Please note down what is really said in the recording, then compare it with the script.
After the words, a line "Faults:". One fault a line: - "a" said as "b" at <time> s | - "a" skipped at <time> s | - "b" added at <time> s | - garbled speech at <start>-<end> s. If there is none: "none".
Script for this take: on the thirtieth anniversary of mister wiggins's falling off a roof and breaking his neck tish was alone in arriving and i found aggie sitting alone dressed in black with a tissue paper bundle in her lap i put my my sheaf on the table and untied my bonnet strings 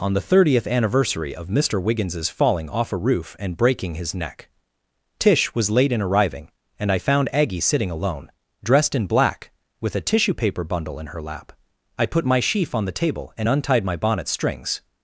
on the thirtieth anniversary of mister wiggins's falling off a roof and breaking his neck tish was late in arriving and i found aggie sitting alone dressed in black with a tissue paper bundle in her lap i put my sheaf on the table and untied my bonnet strings
Faults:
- "alone" said as "late" at 5.7 s
- "my" skipped at 12.4 s